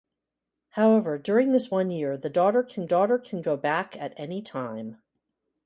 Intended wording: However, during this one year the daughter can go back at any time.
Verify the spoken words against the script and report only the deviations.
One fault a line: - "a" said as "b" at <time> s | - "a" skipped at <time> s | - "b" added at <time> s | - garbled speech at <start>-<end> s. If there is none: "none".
- "daughter can" added at 2.8 s